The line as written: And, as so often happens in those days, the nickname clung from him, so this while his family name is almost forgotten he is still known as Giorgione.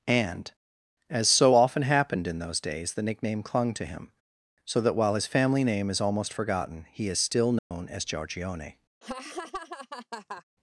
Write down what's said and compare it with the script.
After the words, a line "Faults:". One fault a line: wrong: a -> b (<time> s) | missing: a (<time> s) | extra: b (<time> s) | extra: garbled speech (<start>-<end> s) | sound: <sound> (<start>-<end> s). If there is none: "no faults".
And, as so often happened in those days, the nickname clung to him, so that while his family name is almost forgotten he is still known as Giorgione.
Faults:
wrong: happens -> happened (1.8 s)
wrong: from -> to (3.7 s)
wrong: this -> that (4.8 s)
sound: dropout (7.6-7.7 s)
sound: laugh (9.0-10.4 s)